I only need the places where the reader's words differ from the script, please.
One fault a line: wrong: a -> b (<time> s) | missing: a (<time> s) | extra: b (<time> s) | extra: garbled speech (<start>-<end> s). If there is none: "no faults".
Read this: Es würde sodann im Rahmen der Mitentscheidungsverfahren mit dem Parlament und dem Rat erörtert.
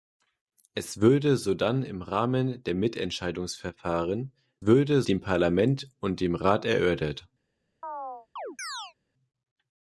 wrong: mit -> würde (4.6 s)